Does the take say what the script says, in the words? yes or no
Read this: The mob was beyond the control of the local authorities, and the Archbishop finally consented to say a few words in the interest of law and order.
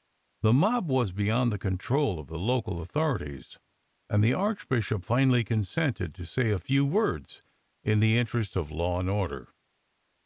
yes